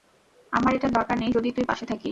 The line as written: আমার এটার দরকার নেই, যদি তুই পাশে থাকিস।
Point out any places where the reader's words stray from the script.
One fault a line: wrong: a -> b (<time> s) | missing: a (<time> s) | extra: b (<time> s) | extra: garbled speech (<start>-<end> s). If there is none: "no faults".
no faults